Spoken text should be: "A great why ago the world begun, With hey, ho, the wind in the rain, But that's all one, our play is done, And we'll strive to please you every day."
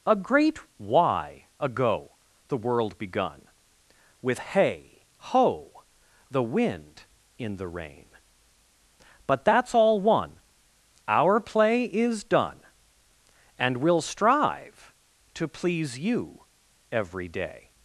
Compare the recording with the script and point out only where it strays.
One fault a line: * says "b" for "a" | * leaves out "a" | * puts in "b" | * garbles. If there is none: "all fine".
all fine